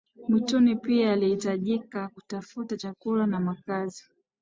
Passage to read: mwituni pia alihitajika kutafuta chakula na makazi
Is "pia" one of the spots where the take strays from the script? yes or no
no